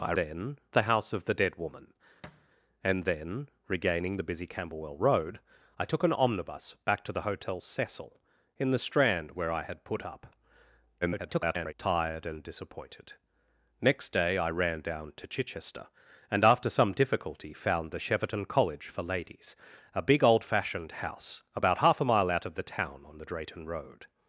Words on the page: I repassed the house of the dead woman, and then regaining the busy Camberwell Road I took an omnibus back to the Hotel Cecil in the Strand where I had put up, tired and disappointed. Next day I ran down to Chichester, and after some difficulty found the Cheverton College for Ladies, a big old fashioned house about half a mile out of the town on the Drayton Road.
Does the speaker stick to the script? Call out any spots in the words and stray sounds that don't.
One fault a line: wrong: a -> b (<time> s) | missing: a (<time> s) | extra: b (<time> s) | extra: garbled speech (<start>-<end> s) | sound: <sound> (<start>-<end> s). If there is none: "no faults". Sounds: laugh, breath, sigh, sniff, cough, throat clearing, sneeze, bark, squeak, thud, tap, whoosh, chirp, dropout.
wrong: repassed -> then (0.1 s)
sound: thud (2.2-2.5 s)
extra: garbled speech (11.0-11.7 s)